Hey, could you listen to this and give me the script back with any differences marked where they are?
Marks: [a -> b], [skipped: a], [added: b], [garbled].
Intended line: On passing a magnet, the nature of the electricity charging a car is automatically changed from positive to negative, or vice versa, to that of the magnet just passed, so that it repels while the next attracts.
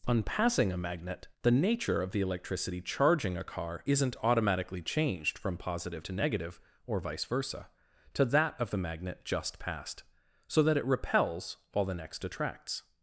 On passing a magnet, the nature of the electricity charging a car [is -> isn't] automatically changed from positive to negative, or vice versa, to that of the magnet just passed, so that it repels while the next attracts.